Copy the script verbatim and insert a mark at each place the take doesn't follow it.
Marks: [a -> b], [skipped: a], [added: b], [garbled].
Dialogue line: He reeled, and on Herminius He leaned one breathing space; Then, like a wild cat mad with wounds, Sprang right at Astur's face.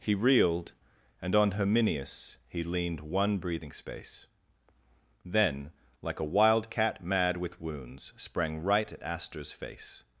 He reeled, and on Herminius He leaned one breathing space; Then, like a wild cat mad with wounds, Sprang right at Astur's face.